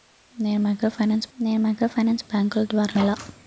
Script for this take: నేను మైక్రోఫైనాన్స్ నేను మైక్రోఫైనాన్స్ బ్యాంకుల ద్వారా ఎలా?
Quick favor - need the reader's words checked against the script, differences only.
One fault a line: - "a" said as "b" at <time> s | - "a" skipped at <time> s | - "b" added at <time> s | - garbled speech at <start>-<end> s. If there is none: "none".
none